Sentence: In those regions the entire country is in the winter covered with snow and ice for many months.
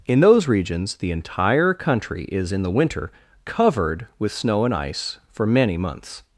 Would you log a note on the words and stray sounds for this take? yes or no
no